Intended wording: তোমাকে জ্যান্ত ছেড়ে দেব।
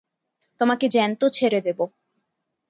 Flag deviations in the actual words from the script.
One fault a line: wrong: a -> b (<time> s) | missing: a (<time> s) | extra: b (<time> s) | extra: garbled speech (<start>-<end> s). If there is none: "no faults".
no faults